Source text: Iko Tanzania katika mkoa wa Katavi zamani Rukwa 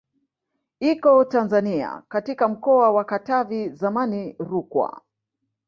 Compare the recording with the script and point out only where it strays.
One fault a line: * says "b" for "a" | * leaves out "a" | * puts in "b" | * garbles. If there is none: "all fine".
all fine